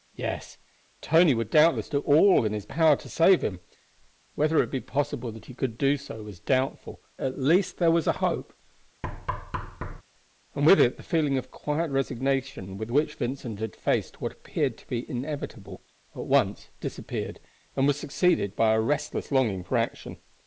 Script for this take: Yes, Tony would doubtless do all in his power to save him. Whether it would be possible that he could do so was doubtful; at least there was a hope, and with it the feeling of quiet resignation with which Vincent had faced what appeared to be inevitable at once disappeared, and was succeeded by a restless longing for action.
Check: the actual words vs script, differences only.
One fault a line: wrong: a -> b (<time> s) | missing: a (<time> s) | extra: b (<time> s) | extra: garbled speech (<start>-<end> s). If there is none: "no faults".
no faults